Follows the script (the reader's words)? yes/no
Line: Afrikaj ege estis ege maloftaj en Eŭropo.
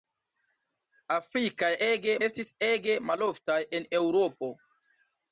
yes